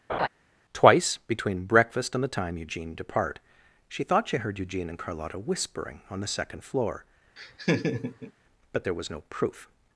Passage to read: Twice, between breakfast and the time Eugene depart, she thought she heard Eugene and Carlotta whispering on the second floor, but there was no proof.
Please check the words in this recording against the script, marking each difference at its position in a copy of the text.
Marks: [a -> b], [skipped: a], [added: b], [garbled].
Twice, between breakfast and the time Eugene depart, she thought she heard Eugene and Carlotta whispering on the second floor, but there was no proof.